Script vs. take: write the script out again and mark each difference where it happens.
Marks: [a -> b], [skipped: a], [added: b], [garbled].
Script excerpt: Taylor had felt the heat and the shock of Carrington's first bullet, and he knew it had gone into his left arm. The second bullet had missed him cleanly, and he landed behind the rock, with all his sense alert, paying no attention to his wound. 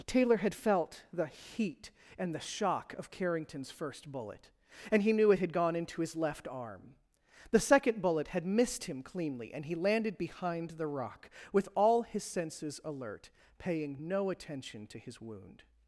Taylor had felt the heat and the shock of Carrington's first bullet, and he knew it had gone into his left arm. The second bullet had missed him cleanly, and he landed behind the rock, with all his [sense -> senses] alert, paying no attention to his wound.